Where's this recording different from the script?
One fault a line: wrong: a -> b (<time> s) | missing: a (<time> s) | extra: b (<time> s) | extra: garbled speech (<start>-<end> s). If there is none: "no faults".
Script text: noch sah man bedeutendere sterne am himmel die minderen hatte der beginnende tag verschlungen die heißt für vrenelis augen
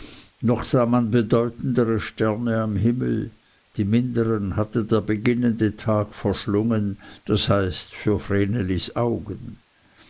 wrong: die -> das (7.2 s)